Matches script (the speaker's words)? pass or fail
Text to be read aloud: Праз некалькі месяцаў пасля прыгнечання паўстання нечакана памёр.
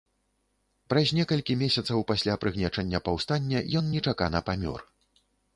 fail